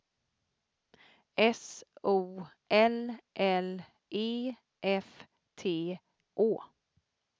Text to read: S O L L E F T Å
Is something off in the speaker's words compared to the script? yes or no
no